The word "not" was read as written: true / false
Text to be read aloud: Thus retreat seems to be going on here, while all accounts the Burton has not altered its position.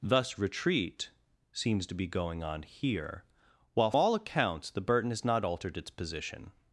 true